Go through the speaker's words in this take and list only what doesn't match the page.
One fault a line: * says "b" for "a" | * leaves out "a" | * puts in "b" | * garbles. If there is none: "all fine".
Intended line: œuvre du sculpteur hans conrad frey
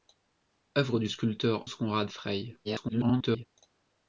* leaves out "hans"
* garbles